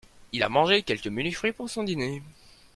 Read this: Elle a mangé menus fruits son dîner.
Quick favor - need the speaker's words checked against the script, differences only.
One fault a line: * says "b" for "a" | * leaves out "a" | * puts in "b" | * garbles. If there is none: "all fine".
* says "Il" for "Elle"
* puts in "quelques"
* puts in "pour"